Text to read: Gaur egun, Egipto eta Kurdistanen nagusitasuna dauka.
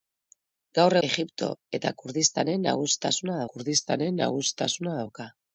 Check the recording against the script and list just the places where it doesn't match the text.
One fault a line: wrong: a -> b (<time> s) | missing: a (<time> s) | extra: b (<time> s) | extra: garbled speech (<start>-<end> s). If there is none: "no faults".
missing: egun (0.9 s)
extra: Kurdistanen nagusitasuna (3.5 s)